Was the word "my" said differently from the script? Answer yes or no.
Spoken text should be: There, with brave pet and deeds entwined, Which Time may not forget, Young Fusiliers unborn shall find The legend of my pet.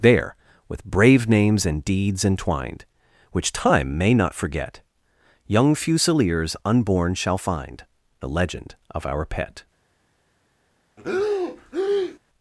yes